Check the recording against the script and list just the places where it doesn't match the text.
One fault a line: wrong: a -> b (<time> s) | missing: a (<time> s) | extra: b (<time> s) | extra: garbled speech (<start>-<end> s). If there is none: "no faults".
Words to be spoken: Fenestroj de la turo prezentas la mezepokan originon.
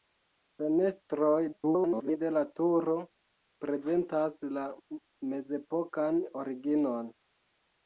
extra: garbled speech (1.5-2.2 s)